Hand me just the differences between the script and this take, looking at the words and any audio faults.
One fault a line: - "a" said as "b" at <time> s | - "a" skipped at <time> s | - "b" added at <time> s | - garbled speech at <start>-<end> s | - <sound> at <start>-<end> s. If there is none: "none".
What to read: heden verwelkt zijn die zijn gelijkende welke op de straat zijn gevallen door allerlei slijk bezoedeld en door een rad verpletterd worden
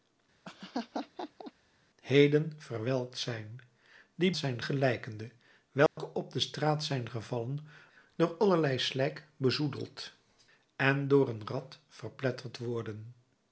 - laugh at 0.4-1.5 s
- dropout at 5.9-6.0 s